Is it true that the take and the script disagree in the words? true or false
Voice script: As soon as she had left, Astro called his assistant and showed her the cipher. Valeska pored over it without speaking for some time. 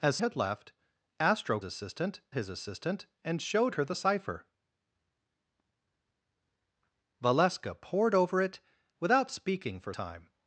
true